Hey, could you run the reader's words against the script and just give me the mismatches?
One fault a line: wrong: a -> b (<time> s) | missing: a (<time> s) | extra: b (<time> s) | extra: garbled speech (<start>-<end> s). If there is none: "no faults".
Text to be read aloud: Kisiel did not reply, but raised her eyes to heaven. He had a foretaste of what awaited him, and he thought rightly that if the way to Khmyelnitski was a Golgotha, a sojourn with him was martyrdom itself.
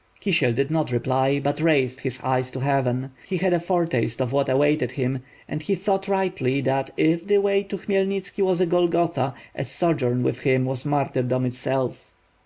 wrong: her -> his (2.0 s)